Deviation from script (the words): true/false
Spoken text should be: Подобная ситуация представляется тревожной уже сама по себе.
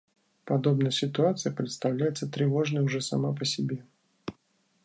false